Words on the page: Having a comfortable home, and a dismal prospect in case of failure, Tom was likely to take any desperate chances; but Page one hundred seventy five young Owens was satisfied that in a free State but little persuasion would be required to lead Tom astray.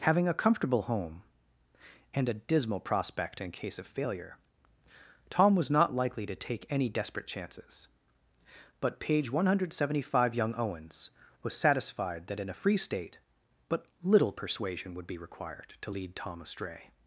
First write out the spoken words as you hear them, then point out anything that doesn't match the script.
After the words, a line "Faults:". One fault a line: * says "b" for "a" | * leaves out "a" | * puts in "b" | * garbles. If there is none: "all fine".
Having a comfortable home, and a dismal prospect in case of failure, Tom was not likely to take any desperate chances; but Page one hundred seventy five young Owens was satisfied that in a free State but little persuasion would be required to lead Tom astray.
Faults:
* puts in "not"